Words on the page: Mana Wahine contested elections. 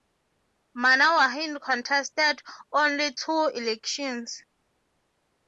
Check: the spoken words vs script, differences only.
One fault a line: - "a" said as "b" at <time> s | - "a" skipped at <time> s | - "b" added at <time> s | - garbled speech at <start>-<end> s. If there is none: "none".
- "only two" added at 2.7 s